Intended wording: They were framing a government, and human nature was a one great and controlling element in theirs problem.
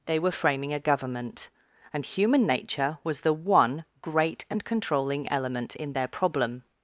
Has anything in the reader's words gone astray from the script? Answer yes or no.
yes